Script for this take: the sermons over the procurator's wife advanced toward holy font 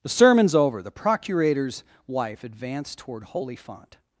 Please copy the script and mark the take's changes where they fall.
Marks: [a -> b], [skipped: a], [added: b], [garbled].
the sermons over the procurator's wife advanced toward holy font